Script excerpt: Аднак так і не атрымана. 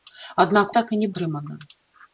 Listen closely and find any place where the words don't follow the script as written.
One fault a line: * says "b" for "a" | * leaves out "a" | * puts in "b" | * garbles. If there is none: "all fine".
all fine